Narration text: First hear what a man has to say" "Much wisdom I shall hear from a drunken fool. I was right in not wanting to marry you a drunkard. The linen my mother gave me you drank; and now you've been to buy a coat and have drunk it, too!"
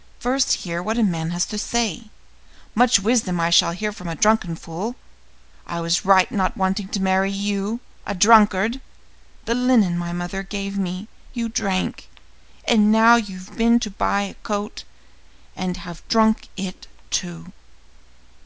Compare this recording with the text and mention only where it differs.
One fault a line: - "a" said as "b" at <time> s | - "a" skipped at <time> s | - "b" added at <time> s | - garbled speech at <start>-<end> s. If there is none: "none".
none